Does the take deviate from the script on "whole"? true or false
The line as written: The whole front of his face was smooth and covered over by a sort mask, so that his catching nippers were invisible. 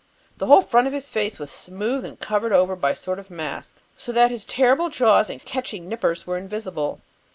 false